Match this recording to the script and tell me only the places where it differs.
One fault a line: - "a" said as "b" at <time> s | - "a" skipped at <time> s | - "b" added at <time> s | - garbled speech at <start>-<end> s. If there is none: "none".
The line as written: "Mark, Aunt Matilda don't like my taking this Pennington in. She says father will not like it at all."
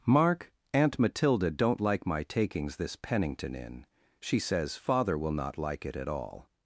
- "taking" said as "takings" at 2.2 s